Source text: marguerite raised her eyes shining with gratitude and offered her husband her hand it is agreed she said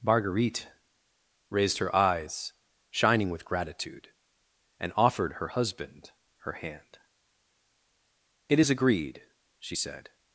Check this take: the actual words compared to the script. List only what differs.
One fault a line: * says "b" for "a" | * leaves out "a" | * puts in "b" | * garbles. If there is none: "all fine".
all fine